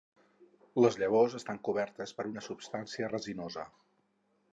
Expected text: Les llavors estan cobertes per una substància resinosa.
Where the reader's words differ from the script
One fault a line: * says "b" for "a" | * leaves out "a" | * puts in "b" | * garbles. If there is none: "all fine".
all fine